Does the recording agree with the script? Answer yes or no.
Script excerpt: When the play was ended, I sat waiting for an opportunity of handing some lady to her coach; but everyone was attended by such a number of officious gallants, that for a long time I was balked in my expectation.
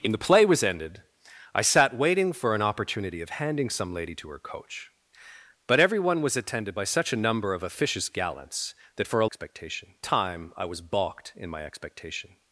no